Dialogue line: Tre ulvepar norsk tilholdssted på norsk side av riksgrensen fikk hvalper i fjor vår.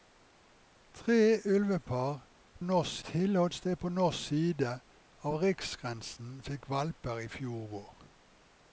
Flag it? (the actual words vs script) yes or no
no